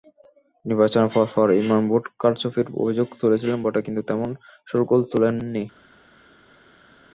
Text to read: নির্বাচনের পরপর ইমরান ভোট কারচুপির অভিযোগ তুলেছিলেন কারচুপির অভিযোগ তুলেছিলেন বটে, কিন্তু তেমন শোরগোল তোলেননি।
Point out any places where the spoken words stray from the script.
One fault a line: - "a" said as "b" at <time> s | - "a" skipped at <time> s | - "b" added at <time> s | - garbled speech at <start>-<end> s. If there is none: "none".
- "কারচুপির অভিযোগ তুলেছিলেন" skipped at 3.6 s